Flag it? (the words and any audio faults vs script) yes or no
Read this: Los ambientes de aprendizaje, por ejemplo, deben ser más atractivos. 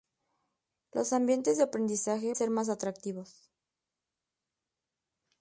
yes